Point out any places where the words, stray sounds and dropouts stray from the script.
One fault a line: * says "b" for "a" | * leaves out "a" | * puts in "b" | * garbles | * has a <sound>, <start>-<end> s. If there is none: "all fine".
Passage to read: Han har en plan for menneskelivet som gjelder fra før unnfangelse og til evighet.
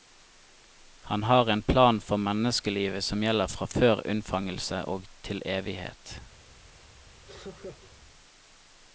* has a laugh, 7.3-7.9 s